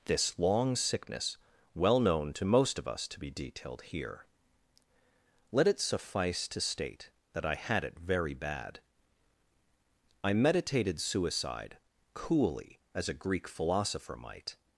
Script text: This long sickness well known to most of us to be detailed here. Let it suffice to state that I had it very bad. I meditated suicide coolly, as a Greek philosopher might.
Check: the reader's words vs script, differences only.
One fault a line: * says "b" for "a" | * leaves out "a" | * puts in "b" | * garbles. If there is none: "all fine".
all fine